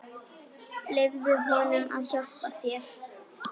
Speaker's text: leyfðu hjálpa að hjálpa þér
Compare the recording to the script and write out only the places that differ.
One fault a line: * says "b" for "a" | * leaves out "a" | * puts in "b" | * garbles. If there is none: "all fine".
* says "honum" for "hjálpa"